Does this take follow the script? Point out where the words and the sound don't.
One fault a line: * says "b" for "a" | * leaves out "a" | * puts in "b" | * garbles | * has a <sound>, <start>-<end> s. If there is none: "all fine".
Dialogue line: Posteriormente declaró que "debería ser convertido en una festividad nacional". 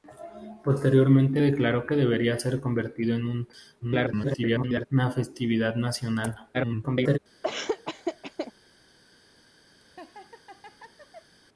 * garbles
* garbles
* has a laugh, 7.4-8.5 s
* has a laugh, 9.8-11.4 s